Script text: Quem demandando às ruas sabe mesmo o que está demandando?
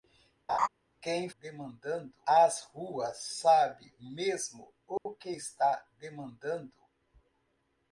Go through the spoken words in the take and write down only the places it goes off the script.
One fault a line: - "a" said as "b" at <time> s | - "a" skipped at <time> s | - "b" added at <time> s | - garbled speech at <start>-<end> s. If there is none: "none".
none